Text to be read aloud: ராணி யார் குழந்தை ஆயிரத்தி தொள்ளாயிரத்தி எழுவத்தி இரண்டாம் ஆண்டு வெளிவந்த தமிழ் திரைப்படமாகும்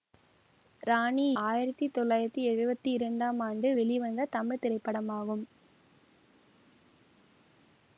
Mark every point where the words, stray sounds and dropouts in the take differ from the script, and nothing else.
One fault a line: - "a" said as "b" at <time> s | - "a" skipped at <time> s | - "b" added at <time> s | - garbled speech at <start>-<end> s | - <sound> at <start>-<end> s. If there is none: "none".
- "யார் குழந்தை" skipped at 1.4 s